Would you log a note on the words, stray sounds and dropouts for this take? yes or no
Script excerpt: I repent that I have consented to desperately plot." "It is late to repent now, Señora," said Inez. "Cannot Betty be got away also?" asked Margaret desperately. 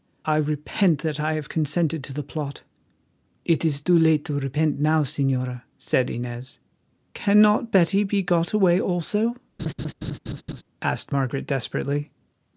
yes